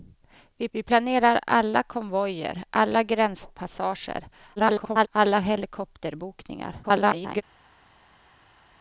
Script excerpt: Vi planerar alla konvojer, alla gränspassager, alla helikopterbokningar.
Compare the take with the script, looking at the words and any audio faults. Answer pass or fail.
fail